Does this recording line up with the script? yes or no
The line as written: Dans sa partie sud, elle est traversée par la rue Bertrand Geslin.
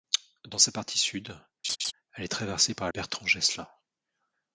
no